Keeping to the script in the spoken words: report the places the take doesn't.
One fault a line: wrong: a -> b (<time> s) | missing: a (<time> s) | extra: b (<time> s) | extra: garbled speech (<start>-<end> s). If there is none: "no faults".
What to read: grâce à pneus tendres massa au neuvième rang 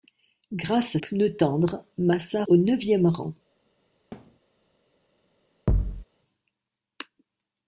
no faults